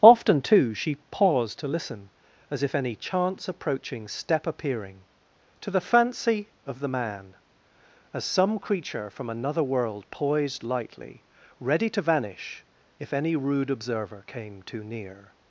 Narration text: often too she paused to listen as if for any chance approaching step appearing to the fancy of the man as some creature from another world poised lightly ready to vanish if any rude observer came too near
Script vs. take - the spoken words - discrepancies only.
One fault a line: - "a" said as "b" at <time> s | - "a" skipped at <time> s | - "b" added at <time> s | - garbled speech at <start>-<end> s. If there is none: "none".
- "for" skipped at 2.7 s